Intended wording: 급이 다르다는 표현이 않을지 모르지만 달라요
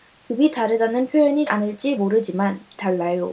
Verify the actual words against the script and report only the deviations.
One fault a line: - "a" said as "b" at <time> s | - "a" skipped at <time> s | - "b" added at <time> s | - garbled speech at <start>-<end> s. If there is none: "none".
none